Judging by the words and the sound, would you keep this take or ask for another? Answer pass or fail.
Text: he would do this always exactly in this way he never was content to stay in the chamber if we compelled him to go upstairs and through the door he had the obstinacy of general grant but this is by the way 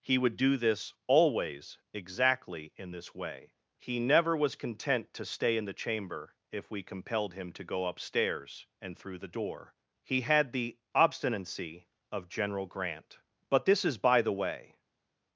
pass